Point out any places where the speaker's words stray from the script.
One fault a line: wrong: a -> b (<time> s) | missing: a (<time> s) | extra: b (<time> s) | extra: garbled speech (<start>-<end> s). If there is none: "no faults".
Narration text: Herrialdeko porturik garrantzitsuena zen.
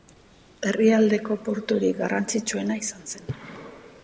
extra: izan (2.9 s)